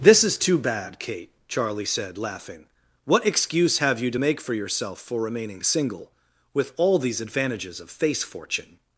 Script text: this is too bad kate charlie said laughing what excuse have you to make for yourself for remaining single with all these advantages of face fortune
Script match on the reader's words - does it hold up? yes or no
yes